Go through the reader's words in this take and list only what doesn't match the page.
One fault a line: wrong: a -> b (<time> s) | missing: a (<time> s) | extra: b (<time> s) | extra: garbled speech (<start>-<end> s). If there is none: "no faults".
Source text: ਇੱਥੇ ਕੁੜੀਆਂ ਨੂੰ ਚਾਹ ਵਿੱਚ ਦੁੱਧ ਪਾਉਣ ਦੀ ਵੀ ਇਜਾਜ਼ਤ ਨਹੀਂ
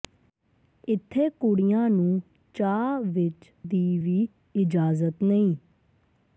missing: ਦੁੱਧ ਪਾਉਣ (3.5 s)